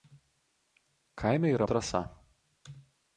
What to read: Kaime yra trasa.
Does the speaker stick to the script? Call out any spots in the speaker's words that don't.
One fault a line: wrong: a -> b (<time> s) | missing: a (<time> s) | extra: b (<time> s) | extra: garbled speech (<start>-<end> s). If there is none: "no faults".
no faults